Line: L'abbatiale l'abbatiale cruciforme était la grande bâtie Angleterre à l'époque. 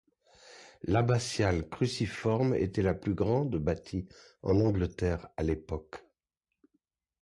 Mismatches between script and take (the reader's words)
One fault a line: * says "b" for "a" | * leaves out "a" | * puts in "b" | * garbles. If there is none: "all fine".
* leaves out "l'abbatiale"
* puts in "plus"
* puts in "en"